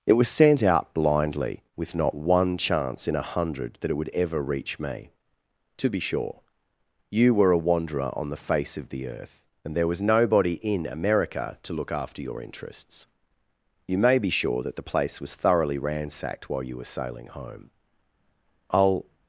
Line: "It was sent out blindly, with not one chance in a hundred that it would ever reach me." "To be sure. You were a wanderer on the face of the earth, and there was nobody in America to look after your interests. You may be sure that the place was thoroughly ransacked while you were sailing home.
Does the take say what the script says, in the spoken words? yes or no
no